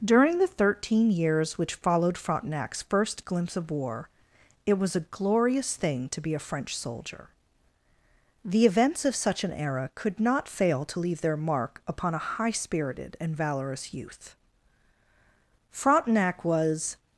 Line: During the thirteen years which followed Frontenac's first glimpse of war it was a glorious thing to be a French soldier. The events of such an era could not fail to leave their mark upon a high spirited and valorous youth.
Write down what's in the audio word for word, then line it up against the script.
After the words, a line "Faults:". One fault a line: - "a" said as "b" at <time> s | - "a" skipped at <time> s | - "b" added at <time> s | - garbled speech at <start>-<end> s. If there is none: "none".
During the thirteen years which followed Frontenac's first glimpse of war it was a glorious thing to be a French soldier. The events of such an era could not fail to leave their mark upon a high spirited and valorous youth. Frontenac was
Faults:
- "Frontenac was" added at 15.7 s